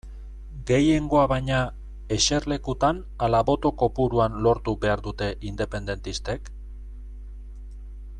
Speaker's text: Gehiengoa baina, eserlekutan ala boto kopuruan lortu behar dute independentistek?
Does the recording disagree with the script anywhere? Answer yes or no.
no